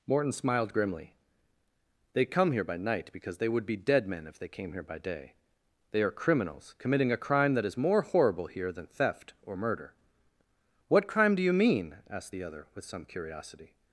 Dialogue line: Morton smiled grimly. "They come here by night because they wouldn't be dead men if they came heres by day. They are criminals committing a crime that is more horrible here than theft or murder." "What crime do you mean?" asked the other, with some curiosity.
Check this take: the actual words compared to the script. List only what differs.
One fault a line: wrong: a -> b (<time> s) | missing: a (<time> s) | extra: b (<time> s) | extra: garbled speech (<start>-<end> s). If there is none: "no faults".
wrong: wouldn't -> would (3.5 s)
wrong: heres -> here (4.7 s)